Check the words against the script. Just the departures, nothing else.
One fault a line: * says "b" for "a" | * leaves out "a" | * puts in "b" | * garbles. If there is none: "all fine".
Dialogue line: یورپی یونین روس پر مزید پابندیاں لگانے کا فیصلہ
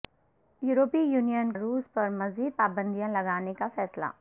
all fine